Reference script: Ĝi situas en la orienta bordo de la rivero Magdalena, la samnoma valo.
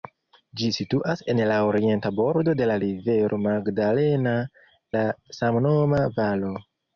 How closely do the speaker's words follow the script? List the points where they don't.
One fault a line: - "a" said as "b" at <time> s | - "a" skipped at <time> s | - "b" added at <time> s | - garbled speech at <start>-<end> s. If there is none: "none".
none